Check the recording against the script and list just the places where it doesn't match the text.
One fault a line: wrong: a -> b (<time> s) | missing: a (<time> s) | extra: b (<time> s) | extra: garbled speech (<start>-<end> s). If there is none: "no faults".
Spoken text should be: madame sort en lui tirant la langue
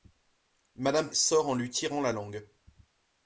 no faults